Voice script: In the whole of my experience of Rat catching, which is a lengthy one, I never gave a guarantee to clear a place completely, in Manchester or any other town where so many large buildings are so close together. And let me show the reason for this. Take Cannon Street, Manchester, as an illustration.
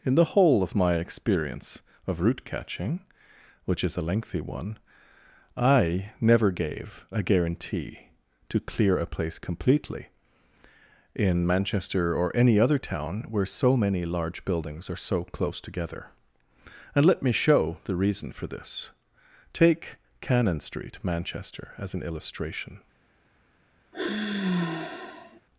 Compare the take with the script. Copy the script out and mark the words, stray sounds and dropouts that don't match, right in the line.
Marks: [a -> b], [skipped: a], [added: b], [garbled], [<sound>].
In the whole of my experience of [Rat -> Root] catching, which is a lengthy one, I never gave a guarantee to clear a place completely, in Manchester or any other town where so many large buildings are so close together. And let me show the reason for this. Take Cannon Street, Manchester, as an illustration. [sigh]